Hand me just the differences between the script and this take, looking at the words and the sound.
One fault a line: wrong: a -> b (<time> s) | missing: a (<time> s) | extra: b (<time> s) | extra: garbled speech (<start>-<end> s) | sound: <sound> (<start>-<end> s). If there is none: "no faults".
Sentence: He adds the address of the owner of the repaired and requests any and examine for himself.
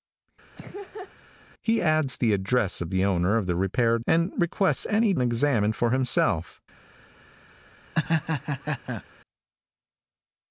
sound: laugh (0.6-1.1 s)
sound: laugh (8.0-9.0 s)